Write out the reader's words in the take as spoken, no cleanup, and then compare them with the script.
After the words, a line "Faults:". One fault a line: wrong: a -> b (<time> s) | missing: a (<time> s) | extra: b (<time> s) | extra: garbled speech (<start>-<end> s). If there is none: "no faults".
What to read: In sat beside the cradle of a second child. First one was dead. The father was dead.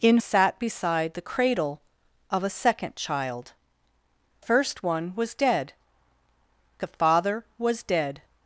In sat beside the cradle of a second child. First one was dead. The father was dead.
Faults:
no faults